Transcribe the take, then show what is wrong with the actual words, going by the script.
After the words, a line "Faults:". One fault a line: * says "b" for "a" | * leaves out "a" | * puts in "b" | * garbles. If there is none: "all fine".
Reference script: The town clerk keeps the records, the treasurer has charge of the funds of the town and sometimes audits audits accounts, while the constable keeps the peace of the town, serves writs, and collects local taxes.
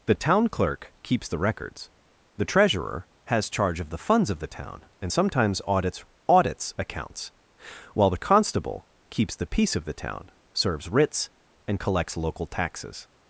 The town clerk keeps the records, the treasurer has charge of the funds of the town and sometimes audits audits accounts, while the constable keeps the peace of the town, serves writs, and collects local taxes.
Faults:
all fine